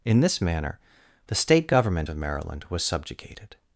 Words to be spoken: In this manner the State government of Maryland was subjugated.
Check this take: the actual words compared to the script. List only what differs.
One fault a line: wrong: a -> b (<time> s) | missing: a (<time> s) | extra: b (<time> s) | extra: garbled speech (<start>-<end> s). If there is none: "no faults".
no faults